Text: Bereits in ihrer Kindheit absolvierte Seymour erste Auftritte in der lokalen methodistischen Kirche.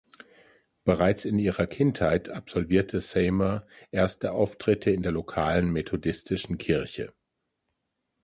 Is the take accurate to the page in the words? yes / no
yes